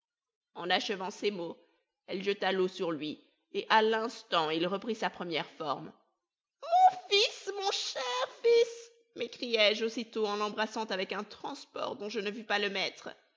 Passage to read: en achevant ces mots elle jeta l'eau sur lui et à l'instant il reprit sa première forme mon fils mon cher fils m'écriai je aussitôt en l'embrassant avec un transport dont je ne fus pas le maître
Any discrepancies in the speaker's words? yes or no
no